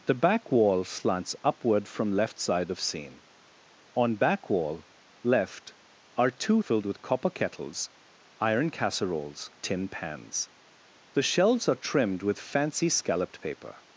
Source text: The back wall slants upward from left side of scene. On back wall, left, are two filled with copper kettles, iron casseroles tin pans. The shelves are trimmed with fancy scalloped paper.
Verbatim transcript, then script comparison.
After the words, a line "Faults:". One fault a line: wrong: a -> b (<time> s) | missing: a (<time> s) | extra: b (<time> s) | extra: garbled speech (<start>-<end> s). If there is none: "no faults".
The back wall slants upward from left side of scene. On back wall, left, are two filled with copper kettles, iron casseroles tin pans. The shelves are trimmed with fancy scalloped paper.
Faults:
no faults